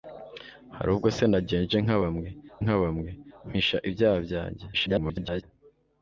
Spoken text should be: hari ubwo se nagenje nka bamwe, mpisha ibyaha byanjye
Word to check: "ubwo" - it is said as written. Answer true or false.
true